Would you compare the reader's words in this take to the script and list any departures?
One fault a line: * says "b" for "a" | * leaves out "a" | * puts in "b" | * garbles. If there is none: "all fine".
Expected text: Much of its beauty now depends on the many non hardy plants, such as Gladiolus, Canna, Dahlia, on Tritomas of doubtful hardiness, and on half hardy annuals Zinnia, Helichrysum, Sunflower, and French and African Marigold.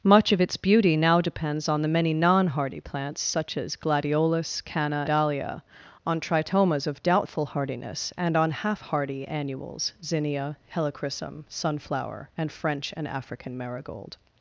all fine